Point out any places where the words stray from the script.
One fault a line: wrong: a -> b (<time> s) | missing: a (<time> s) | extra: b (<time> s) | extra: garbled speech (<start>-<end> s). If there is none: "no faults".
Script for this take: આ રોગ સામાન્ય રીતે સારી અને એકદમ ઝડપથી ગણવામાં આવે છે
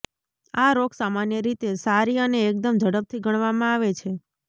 no faults